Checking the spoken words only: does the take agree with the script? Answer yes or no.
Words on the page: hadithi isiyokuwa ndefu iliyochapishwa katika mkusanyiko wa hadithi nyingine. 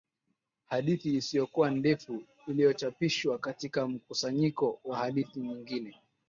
yes